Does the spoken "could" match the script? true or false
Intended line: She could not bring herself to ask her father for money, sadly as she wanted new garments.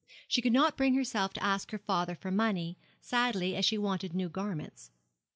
true